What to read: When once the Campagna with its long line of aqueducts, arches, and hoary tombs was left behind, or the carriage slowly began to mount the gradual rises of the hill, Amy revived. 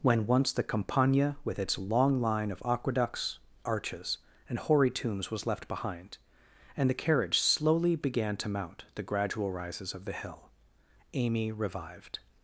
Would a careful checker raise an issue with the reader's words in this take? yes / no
yes